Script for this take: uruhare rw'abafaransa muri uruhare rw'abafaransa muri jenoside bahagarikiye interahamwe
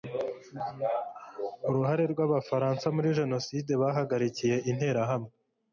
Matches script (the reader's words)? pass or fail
fail